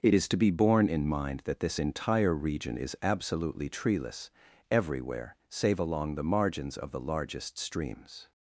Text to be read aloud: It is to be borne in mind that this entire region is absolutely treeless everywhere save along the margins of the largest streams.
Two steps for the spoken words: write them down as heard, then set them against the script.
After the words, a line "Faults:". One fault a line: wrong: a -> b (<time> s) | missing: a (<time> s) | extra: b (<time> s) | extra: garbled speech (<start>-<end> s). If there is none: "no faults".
It is to be borne in mind that this entire region is absolutely treeless everywhere save along the margins of the largest streams.
Faults:
no faults